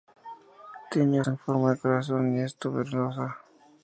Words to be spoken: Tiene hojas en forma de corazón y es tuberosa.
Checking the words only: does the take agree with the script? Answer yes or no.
no